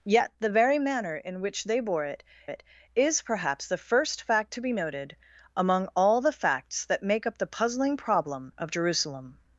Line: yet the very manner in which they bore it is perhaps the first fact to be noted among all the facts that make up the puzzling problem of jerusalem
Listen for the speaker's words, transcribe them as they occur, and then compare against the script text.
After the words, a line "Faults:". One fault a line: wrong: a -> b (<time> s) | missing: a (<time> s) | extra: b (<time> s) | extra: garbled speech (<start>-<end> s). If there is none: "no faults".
yet the very manner in which they bore it it is perhaps the first fact to be noted among all the facts that make up the puzzling problem of jerusalem
Faults:
extra: it (2.5 s)